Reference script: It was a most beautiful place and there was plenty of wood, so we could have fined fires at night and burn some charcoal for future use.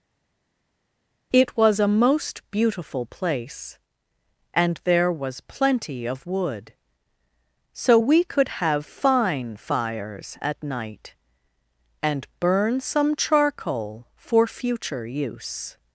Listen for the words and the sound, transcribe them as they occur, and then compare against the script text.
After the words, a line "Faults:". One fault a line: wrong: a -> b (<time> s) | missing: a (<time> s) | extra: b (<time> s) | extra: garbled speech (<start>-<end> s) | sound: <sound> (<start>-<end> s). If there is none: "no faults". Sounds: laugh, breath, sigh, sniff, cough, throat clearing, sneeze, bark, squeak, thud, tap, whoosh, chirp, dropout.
It was a most beautiful place and there was plenty of wood, so we could have fine fires at night and burn some charcoal for future use.
Faults:
wrong: fined -> fine (8.8 s)